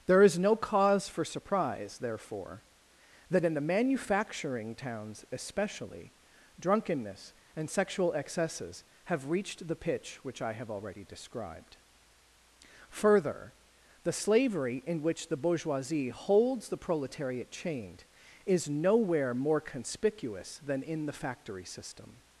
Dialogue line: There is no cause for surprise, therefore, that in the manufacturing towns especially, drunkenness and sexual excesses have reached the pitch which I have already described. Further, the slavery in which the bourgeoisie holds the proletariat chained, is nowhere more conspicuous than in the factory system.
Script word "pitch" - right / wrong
right